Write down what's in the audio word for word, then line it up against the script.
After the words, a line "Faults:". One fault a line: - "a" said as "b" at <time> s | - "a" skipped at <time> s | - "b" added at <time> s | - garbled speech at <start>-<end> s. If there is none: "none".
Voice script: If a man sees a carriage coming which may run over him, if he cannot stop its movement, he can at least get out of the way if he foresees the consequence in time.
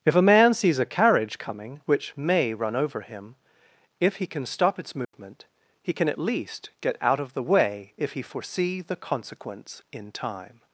If a man sees a carriage coming which may run over him, if he can stop its movement, he can at least get out of the way if he foresee the consequence in time.
Faults:
- "cannot" said as "can" at 4.3 s
- "foresees" said as "foresee" at 8.2 s